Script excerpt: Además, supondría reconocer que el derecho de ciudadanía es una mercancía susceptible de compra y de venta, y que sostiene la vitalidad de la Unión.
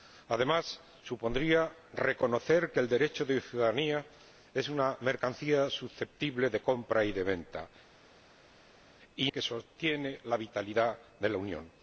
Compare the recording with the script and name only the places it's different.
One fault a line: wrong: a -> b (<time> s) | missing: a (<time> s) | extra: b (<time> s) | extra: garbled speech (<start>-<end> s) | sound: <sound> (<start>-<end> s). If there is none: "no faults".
no faults